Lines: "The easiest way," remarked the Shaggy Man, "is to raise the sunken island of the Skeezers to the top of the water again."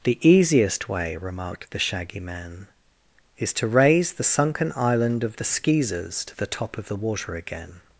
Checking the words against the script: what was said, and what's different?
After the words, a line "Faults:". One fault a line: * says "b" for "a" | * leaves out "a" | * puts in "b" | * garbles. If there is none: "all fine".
"The easiest way," remarked the Shaggy Man, "is to raise the sunken island of the Skeezers to the top of the water again."
Faults:
all fine